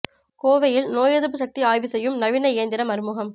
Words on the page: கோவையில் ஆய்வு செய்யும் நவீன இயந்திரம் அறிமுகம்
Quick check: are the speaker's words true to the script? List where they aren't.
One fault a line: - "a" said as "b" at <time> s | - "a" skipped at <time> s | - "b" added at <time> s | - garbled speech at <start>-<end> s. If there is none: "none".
- "நோய் எதிர்ப்பு சக்தி" added at 0.9 s